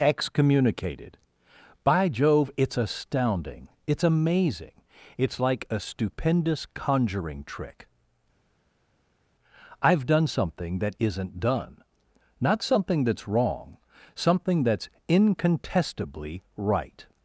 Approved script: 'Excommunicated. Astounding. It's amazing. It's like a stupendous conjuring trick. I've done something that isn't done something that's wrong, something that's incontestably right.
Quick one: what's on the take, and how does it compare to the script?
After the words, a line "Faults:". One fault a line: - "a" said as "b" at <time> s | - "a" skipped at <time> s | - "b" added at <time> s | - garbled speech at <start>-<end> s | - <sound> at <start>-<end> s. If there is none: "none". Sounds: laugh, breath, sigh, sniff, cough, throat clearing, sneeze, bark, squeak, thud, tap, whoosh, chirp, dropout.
'Excommunicated. By Jove, it's astounding. It's amazing. It's like a stupendous conjuring trick. I've done something that isn't done not something that's wrong, something that's incontestably right.
Faults:
- "By Jove it's" added at 1.8 s
- "not" added at 12.4 s